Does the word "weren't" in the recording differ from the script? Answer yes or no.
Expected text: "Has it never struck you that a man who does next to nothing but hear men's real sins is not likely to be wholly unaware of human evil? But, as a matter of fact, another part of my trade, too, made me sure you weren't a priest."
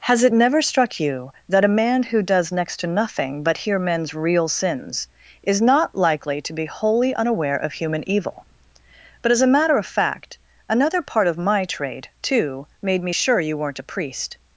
no